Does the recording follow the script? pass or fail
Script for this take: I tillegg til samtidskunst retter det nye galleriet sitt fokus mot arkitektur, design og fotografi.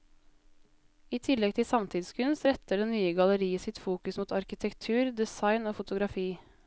pass